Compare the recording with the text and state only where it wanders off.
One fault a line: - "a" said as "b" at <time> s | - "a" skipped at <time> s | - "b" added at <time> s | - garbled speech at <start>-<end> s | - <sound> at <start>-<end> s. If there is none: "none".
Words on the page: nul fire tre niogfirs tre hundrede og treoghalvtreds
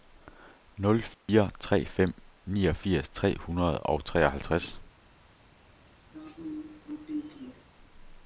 - dropout at 1.1-1.3 s
- "fem" added at 1.8 s
- throat clearing at 6.1-7.6 s